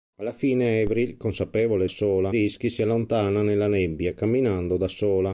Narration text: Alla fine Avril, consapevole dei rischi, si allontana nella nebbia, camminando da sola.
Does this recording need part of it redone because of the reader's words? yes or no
yes